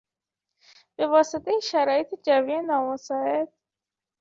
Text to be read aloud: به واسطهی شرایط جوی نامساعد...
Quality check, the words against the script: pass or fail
pass